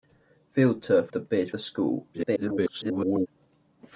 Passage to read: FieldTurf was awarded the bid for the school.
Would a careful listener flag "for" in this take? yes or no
yes